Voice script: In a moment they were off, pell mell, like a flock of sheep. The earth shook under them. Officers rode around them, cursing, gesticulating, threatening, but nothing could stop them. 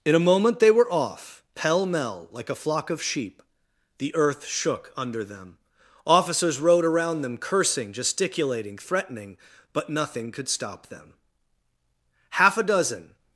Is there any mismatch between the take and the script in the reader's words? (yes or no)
yes